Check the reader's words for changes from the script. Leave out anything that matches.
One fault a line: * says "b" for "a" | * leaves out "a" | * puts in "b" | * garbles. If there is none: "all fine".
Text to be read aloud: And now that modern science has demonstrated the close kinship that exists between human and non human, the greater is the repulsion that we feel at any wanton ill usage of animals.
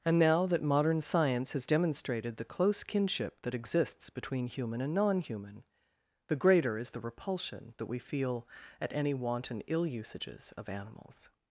* says "usages" for "usage"